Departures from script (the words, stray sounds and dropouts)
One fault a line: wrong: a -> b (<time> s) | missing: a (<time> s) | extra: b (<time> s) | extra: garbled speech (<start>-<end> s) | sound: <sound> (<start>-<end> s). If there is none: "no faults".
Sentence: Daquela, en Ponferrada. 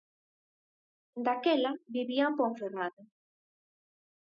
extra: vivía (1.9 s)